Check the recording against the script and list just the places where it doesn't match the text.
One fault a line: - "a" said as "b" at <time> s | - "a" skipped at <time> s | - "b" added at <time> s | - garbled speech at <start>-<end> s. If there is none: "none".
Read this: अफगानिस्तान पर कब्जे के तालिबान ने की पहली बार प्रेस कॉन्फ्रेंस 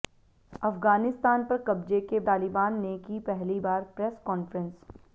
none